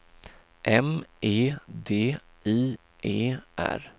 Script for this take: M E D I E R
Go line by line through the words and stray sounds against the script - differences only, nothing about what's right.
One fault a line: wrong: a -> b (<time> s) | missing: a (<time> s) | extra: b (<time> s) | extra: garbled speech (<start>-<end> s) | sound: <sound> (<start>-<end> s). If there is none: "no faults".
no faults